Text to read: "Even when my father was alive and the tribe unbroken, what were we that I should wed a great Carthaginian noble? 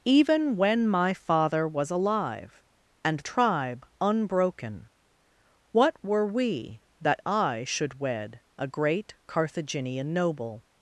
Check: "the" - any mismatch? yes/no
yes